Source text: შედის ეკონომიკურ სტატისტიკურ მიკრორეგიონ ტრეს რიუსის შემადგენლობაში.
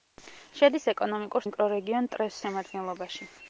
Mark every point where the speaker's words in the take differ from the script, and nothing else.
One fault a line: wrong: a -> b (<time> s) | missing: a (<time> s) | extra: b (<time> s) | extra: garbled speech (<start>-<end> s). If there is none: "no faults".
missing: სტატისტიკურ (1.4 s)
missing: რიუსის (2.4 s)